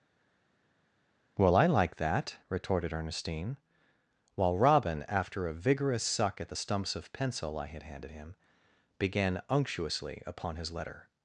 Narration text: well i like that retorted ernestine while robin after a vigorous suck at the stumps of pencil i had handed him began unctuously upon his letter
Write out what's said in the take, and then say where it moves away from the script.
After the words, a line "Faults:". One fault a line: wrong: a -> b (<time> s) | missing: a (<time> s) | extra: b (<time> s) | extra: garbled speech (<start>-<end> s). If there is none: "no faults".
well i like that retorted ernestine while robin after a vigorous suck at the stumps of pencil i had handed him began unctuously upon his letter
Faults:
no faults